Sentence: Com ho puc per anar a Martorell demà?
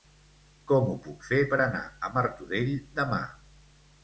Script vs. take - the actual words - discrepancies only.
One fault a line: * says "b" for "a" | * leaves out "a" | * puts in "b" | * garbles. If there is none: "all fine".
* puts in "fer"